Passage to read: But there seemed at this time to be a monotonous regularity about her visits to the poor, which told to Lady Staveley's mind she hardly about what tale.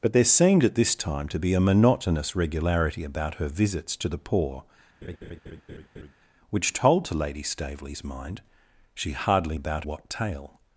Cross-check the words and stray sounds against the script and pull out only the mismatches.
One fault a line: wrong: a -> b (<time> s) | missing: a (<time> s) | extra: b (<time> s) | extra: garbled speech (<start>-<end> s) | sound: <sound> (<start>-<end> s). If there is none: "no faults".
sound: laugh (5.0-6.1 s)